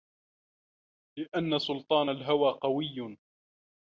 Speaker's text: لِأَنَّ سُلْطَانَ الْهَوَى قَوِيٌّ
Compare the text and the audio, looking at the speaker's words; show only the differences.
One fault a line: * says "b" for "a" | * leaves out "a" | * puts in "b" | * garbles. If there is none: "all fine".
all fine